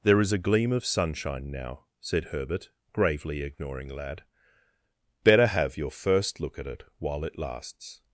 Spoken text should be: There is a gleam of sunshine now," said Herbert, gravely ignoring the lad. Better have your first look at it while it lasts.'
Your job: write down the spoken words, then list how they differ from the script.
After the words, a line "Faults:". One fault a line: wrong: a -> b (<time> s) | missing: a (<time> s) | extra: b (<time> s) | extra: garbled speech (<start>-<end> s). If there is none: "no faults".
There is a gleam of sunshine now," said Herbert, gravely ignoring lad. Better have your first look at it while it lasts.'
Faults:
missing: the (3.9 s)